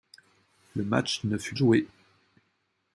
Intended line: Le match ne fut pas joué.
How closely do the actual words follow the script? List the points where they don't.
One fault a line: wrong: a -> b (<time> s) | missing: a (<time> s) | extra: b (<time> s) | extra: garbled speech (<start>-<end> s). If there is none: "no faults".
missing: pas (1.5 s)